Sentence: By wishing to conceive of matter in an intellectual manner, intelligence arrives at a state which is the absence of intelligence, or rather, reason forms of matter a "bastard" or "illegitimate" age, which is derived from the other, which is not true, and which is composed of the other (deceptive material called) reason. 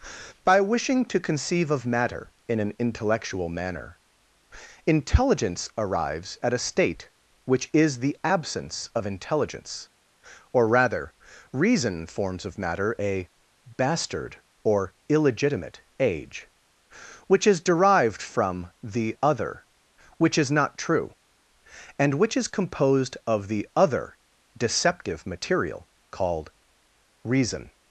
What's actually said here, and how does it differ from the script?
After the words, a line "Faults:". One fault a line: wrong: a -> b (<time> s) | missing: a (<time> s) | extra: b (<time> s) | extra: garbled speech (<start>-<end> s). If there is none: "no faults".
By wishing to conceive of matter in an intellectual manner, intelligence arrives at a state which is the absence of intelligence, or rather, reason forms of matter a "bastard" or "illegitimate" age, which is derived from the other, which is not true, and which is composed of the other (deceptive material called) reason.
Faults:
no faults